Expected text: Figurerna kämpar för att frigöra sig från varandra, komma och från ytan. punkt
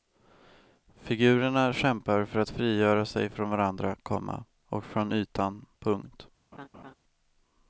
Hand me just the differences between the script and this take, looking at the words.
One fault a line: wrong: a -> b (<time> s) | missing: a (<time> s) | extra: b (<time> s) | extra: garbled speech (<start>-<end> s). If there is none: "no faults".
no faults